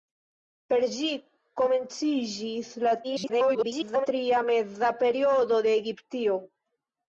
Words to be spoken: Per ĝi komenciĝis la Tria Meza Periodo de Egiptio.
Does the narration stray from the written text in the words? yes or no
yes